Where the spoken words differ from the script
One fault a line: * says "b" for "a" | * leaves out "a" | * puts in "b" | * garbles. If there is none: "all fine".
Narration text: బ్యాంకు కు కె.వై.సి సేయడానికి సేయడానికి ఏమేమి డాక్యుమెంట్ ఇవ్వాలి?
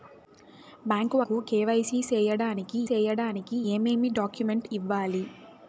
all fine